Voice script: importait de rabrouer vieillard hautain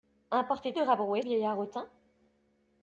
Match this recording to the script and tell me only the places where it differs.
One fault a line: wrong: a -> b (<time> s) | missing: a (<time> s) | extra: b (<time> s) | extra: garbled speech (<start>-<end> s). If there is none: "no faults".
no faults